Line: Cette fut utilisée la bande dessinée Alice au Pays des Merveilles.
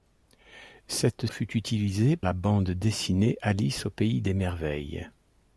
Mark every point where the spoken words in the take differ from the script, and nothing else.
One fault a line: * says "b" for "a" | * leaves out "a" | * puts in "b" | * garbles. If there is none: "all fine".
all fine